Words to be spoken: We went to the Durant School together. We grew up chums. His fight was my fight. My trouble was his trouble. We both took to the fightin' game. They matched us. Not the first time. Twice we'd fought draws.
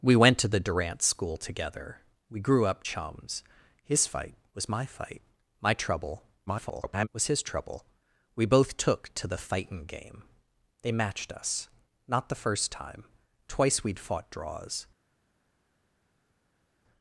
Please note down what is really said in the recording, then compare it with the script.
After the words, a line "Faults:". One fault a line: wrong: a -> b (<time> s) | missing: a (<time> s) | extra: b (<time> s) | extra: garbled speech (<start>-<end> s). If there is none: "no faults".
We went to the Durant School together. We grew up chums. His fight was my fight. My trouble [garbled] was his trouble. We both took to the fightin' game. They matched us. Not the first time. Twice we'd fought draws.
Faults:
extra: garbled speech (6.5-7.1 s)